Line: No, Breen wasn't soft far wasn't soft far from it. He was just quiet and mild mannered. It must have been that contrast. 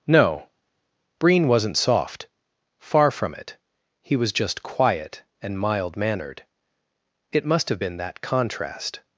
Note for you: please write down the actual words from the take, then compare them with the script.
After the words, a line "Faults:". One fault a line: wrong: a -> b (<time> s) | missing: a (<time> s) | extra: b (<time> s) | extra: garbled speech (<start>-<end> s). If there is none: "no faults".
No, Breen wasn't soft far from it. He was just quiet and mild mannered. It must have been that contrast.
Faults:
missing: wasn't soft far (3.1 s)